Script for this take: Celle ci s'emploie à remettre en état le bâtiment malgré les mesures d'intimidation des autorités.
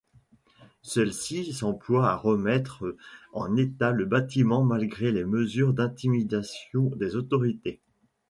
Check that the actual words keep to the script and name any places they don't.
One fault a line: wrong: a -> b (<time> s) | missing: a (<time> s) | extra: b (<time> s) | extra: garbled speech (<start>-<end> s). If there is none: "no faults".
no faults